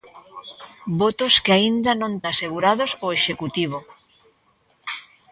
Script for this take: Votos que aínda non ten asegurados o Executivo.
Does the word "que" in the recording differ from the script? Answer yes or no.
no